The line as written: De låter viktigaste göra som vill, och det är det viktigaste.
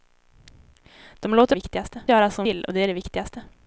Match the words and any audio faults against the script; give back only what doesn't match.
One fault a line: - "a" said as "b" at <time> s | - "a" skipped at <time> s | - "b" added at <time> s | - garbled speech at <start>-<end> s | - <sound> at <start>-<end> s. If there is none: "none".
none